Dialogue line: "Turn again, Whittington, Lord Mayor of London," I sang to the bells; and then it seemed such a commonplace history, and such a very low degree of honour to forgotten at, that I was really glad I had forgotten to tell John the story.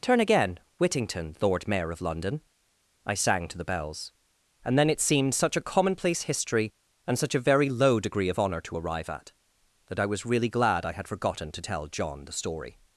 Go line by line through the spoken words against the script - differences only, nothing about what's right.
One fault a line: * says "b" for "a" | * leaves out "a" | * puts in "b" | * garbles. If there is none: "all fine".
* says "arrive" for "forgotten"